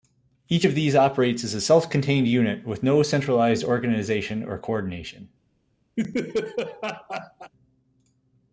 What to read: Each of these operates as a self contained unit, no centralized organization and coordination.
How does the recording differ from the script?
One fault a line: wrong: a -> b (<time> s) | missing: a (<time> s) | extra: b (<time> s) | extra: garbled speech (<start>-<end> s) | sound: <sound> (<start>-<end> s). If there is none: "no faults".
extra: with (2.6 s)
wrong: and -> or (4.4 s)
sound: laugh (6.0-7.5 s)